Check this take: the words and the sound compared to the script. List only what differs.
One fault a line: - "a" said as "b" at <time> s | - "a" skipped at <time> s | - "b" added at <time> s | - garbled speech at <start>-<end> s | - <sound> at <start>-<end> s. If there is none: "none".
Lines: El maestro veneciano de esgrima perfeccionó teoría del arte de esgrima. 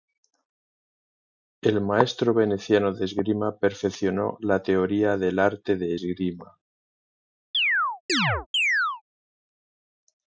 - "la" added at 4.4 s
- chirp at 7.5-9.0 s